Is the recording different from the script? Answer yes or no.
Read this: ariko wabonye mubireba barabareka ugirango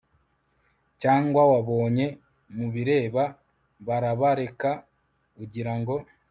yes